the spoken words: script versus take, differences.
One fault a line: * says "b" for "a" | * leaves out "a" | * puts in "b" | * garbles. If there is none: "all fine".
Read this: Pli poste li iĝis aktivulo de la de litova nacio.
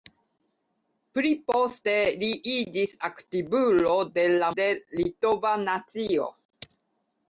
all fine